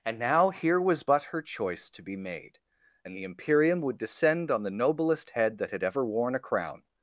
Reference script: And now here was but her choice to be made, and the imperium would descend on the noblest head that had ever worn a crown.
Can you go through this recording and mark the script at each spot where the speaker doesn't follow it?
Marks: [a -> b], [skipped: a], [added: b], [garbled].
And now here was but her choice to be made, and the imperium would descend on the noblest head that had ever worn a crown.